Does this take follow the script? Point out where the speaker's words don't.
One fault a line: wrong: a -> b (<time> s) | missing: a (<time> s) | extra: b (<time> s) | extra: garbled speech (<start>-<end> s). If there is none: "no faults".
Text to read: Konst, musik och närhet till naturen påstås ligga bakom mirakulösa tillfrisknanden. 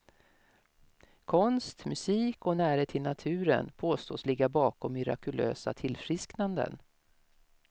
no faults